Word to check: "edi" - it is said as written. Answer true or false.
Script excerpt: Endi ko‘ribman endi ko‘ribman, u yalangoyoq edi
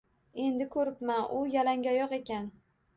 false